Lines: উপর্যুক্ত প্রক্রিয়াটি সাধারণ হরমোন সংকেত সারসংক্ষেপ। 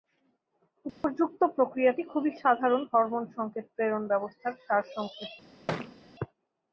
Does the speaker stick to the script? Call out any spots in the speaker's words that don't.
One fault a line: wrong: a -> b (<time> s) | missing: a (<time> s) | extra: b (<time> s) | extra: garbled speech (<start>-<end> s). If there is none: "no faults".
extra: খুবই (2.0 s)
extra: প্রেরণ ব্যবস্থার (3.8 s)